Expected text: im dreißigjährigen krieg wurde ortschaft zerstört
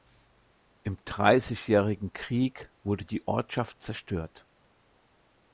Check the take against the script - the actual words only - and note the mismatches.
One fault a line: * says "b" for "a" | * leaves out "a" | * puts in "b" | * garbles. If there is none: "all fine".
* puts in "die"